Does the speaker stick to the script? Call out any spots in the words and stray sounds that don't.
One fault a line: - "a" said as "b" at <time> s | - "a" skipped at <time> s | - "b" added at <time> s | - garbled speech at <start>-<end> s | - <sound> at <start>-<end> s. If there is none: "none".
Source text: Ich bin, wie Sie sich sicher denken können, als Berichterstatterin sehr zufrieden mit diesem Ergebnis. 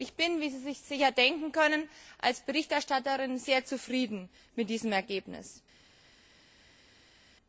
none